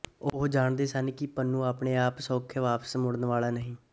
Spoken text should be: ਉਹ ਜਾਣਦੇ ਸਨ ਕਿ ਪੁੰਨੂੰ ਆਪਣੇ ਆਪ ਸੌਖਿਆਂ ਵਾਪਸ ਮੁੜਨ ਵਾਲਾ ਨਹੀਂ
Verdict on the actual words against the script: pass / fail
pass